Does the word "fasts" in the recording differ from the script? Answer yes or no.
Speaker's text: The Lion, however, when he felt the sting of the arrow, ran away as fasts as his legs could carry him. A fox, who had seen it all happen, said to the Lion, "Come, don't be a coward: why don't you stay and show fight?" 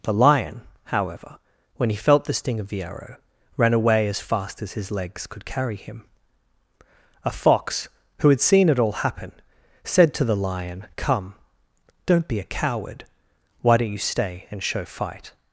yes